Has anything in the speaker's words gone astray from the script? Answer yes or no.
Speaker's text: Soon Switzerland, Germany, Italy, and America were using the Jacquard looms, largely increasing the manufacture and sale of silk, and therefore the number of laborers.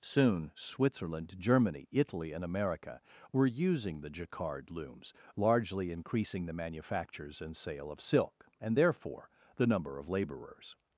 yes